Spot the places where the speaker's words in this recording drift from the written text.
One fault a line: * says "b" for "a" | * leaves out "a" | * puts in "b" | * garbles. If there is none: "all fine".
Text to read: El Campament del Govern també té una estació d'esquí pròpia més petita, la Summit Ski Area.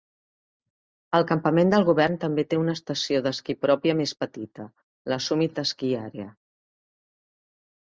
all fine